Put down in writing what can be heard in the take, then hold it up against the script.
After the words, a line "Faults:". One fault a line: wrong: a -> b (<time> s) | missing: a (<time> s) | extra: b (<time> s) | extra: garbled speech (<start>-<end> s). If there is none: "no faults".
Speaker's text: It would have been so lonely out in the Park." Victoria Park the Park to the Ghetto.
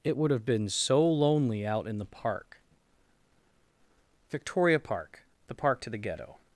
It would have been so lonely out in the Park." Victoria Park the Park to the Ghetto.
Faults:
no faults